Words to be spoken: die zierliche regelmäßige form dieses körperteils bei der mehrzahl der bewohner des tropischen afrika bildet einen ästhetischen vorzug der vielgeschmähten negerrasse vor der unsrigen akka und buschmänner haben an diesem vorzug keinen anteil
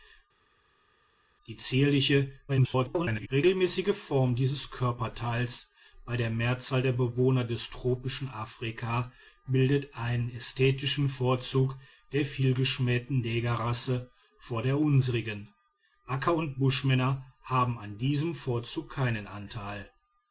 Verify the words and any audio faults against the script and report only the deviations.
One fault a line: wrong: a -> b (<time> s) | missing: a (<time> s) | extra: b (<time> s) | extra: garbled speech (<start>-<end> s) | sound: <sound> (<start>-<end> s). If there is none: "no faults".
extra: garbled speech (2.5-3.3 s)